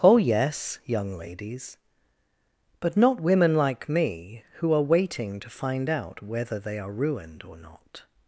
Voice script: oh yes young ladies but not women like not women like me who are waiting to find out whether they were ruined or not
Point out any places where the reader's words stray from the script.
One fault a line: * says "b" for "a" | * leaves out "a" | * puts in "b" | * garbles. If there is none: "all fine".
* leaves out "not women like"
* says "are" for "were"